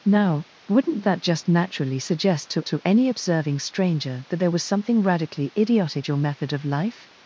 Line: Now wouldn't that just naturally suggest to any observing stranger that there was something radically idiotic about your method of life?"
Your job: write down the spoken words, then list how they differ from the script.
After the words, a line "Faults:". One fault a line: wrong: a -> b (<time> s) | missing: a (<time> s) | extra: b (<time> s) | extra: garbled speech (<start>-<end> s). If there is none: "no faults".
Now wouldn't that just naturally suggest to to any observing stranger that there was something radically idiotic your method of life?"
Faults:
extra: to (2.6 s)
missing: about (6.1 s)